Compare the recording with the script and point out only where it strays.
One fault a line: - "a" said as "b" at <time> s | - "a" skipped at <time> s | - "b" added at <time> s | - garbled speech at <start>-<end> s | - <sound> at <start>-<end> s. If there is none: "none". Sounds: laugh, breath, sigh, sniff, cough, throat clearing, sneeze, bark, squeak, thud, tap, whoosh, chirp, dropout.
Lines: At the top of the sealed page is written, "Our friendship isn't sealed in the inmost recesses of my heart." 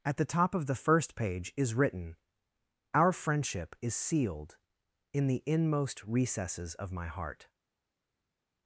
- "sealed" said as "first" at 0.8 s
- "isn't" said as "is" at 3.8 s